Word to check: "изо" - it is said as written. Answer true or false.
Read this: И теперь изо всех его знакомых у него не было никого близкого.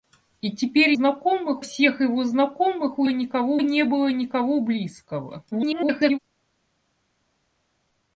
false